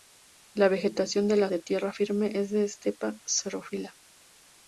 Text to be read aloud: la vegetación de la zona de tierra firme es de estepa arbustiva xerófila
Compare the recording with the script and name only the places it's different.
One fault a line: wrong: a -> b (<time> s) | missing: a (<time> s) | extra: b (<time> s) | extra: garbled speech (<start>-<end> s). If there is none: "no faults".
missing: zona (1.5 s)
missing: arbustiva (3.2 s)